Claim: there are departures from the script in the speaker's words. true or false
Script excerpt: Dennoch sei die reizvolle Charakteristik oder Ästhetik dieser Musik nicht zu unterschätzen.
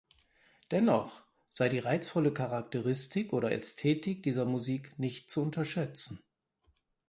false